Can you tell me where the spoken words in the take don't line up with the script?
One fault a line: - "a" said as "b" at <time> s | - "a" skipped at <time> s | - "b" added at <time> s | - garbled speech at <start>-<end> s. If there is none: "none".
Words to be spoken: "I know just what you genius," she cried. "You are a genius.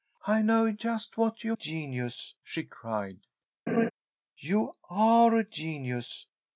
none